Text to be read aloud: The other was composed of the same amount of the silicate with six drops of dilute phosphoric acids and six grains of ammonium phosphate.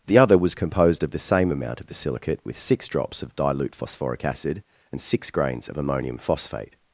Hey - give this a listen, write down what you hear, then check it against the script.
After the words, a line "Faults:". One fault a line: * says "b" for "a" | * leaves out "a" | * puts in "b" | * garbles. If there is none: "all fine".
The other was composed of the same amount of the silicate with six drops of dilute phosphoric acid and six grains of ammonium phosphate.
Faults:
* says "acid" for "acids"